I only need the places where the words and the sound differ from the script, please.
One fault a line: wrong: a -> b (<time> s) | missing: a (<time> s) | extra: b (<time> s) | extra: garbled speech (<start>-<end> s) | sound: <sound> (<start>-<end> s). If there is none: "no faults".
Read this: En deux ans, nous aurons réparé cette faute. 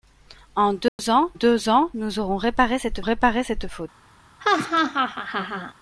sound: dropout (0.9-1.0 s)
extra: deux ans (1.3 s)
extra: réparé cette (3.0 s)
sound: laugh (4.4-5.7 s)